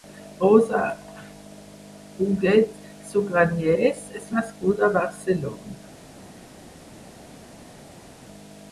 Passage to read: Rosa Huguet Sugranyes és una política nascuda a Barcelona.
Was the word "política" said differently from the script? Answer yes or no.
yes